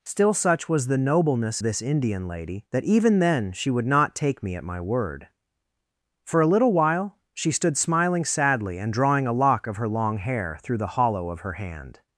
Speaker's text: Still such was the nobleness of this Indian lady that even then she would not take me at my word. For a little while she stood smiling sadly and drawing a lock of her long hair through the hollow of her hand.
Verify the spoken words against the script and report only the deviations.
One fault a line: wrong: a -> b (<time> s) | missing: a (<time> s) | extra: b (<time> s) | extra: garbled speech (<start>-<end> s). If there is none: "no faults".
missing: of (1.6 s)